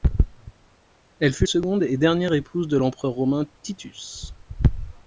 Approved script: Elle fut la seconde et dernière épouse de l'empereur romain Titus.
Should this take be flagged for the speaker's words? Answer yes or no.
yes